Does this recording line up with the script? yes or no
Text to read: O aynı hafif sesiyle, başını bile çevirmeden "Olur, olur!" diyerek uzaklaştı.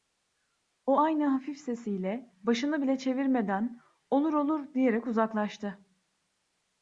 yes